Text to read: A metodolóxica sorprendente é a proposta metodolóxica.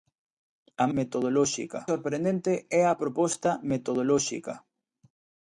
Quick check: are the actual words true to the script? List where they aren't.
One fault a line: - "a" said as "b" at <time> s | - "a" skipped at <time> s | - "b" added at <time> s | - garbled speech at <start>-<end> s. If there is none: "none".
none